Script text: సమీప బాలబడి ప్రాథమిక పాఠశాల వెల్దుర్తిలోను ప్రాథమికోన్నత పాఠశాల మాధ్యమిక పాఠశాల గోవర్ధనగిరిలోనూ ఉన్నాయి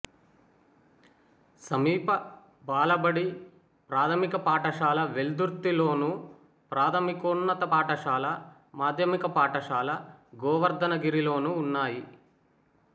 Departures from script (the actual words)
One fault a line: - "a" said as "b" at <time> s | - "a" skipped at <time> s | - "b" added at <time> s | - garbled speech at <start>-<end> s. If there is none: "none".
none